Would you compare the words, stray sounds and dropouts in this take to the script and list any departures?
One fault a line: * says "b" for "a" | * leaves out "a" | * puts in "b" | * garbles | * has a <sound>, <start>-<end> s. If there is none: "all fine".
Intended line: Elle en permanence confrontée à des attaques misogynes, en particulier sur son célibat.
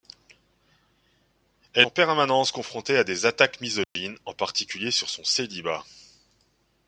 * has a dropout, 3.8-4.0 s